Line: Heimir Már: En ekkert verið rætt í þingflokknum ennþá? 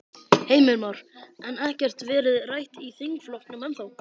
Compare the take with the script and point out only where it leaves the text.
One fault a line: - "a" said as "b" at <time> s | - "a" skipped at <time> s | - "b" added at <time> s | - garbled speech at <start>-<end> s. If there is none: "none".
none